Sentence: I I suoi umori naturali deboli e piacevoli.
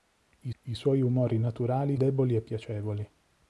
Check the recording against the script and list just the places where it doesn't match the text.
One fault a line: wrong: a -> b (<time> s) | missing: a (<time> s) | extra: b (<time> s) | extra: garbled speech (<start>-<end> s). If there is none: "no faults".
no faults